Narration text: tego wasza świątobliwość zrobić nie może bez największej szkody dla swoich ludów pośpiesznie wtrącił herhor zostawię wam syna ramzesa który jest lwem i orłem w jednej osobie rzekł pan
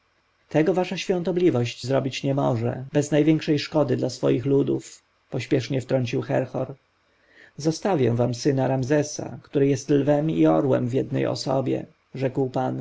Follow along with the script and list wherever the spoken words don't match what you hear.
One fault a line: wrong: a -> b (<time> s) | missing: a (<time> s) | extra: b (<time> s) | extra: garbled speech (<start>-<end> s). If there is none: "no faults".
no faults